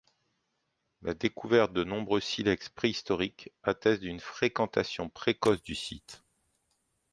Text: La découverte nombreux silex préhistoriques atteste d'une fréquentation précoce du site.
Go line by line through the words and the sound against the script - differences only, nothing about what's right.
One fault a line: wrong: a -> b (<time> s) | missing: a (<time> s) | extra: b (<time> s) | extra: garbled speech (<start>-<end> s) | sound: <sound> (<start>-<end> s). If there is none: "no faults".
extra: de (1.7 s)